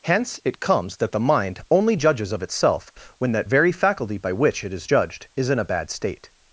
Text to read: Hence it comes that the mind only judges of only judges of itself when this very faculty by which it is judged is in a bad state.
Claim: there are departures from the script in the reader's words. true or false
true